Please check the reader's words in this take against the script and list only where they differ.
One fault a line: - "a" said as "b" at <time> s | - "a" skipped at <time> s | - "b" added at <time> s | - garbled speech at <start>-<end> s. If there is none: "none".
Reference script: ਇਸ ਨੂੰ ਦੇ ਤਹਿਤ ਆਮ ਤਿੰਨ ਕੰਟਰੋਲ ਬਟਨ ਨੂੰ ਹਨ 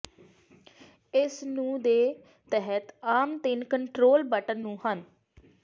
none